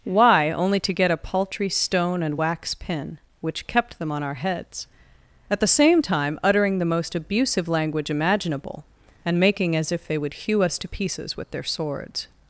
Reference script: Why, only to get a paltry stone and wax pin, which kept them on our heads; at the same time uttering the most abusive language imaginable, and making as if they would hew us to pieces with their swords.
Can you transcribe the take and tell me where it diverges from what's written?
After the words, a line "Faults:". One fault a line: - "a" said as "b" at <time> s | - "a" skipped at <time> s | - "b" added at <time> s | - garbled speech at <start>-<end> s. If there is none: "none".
Why, only to get a paltry stone and wax pin, which kept them on our heads; at the same time uttering the most abusive language imaginable, and making as if they would hew us to pieces with their swords.
Faults:
none